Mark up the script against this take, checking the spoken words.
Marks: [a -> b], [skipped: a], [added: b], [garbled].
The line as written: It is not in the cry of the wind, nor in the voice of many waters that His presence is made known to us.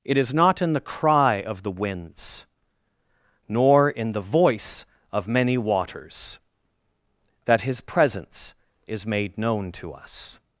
It is not in the cry of the [wind, -> winds] nor in the voice of many waters that His presence is made known to us.